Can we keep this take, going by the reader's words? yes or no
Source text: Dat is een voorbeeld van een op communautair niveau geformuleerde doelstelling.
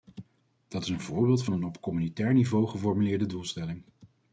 yes